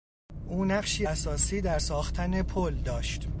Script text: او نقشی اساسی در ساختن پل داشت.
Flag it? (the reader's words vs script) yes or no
no